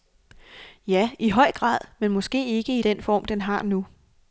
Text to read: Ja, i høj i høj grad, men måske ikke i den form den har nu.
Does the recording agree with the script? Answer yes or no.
no